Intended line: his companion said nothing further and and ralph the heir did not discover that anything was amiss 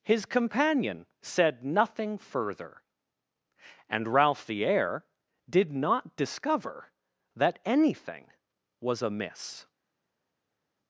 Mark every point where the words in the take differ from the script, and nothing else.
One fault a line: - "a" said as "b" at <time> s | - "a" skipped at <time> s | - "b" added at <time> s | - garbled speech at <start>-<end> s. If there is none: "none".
- "and" skipped at 4.1 s